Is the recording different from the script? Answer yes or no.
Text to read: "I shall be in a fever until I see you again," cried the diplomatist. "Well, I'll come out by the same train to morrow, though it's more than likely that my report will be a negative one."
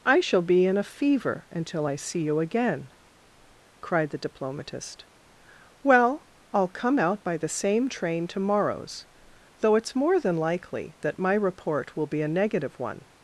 yes